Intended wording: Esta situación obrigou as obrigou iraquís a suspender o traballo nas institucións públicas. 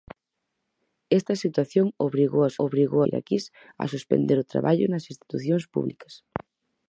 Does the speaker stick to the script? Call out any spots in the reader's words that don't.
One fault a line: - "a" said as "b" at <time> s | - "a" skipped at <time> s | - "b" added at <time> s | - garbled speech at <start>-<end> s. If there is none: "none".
none